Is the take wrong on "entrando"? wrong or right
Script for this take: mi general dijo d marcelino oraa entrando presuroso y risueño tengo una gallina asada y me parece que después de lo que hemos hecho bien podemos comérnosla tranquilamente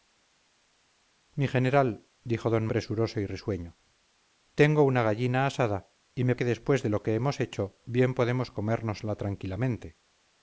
wrong